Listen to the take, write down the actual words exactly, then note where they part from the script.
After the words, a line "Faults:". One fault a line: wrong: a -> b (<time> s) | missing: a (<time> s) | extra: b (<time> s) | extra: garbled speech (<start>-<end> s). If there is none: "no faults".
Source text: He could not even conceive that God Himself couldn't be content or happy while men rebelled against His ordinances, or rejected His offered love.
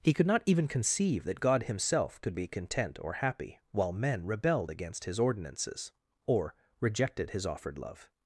He could not even conceive that God Himself could be content or happy while men rebelled against His ordinances, or rejected His offered love.
Faults:
wrong: couldn't -> could (2.2 s)